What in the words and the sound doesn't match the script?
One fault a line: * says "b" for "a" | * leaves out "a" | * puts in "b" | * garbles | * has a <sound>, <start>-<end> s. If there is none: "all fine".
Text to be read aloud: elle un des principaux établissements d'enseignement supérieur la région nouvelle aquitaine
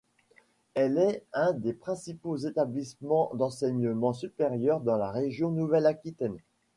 * puts in "est"
* puts in "dans"